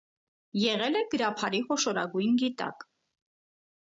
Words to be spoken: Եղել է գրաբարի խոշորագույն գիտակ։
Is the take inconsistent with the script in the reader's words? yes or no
no